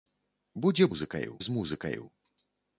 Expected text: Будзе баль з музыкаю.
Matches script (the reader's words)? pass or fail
fail